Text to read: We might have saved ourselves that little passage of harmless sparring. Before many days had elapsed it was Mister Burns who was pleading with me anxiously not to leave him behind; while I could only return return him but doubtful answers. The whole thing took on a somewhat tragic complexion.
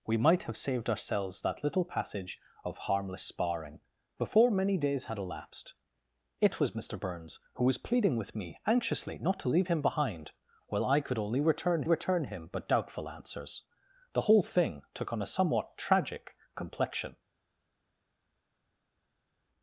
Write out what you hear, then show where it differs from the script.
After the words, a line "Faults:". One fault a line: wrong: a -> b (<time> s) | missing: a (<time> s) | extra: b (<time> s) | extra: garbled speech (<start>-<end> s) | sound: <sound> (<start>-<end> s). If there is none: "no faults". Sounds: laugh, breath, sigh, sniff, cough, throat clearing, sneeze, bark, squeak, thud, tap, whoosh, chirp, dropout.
We might have saved ourselves that little passage of harmless sparring. Before many days had elapsed it was Mister Burns who was pleading with me anxiously not to leave him behind; while I could only return return him but doubtful answers. The whole thing took on a somewhat tragic complexion.
Faults:
no faults